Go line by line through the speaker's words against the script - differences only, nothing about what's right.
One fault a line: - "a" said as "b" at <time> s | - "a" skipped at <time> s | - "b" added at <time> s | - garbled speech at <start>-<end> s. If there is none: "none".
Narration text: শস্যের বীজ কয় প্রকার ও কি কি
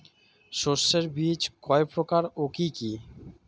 none